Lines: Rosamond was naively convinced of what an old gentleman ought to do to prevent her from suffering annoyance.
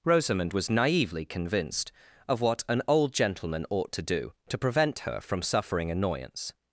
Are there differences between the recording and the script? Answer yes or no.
no